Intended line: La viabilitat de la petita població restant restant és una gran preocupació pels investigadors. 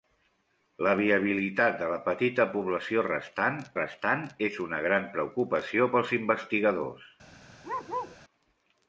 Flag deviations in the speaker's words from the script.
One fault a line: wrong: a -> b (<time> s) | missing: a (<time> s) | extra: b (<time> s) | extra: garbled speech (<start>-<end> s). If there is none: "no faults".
no faults